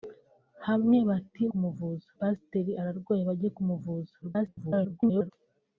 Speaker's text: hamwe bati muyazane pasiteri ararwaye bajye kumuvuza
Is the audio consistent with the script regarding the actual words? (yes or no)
no